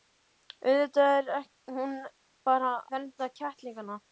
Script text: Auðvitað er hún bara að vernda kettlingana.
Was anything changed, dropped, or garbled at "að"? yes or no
yes